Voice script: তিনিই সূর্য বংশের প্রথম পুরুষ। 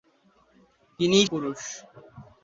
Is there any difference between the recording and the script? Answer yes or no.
yes